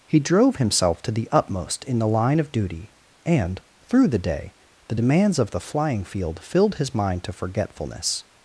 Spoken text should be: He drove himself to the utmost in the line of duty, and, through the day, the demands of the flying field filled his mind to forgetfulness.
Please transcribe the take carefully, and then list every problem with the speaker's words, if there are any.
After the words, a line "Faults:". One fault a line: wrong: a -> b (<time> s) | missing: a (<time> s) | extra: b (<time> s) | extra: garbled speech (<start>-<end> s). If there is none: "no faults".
He drove himself to the utmost in the line of duty, and, through the day, the demands of the flying field filled his mind to forgetfulness.
Faults:
no faults